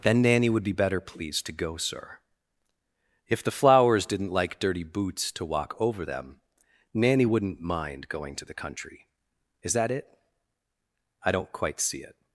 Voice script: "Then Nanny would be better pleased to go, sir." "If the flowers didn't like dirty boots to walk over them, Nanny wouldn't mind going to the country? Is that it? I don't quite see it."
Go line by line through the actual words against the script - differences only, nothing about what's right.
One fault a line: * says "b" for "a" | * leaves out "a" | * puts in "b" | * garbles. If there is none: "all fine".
all fine